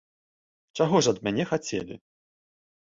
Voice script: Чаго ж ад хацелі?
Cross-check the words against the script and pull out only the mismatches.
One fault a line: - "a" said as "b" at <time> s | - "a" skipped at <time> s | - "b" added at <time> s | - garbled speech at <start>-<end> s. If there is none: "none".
- "мяне" added at 1.3 s